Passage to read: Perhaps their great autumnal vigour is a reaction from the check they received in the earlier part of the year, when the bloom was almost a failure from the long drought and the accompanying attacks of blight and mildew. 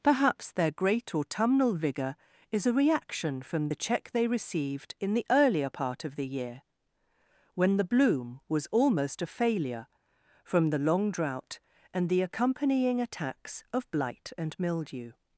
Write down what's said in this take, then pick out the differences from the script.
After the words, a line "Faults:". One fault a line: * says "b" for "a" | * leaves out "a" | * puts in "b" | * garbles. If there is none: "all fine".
Perhaps their great autumnal vigour is a reaction from the check they received in the earlier part of the year, when the bloom was almost a failure from the long drought and the accompanying attacks of blight and mildew.
Faults:
all fine